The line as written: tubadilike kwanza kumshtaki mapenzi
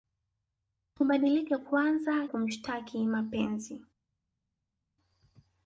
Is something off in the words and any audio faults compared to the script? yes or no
no